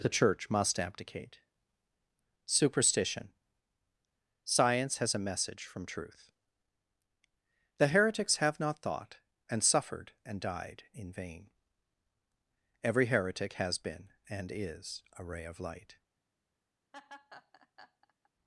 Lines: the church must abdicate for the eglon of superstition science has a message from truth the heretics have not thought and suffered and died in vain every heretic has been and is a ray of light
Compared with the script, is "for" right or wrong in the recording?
wrong